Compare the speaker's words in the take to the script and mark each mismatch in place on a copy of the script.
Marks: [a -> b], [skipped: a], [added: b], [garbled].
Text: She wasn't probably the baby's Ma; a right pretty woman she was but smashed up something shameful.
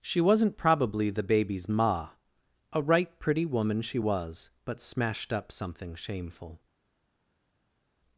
She wasn't probably the baby's Ma; a right pretty woman she was but smashed up something shameful.